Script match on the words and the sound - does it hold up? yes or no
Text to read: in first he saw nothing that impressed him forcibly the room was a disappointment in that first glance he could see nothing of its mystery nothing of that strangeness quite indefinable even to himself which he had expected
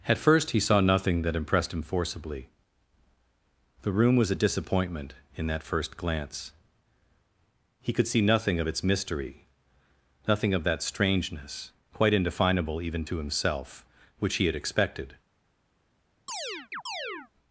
no